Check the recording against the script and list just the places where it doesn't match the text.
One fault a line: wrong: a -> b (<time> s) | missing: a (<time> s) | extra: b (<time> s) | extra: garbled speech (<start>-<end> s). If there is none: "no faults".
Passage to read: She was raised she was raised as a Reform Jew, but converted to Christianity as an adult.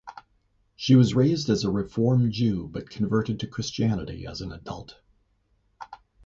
missing: she was raised (1.5 s)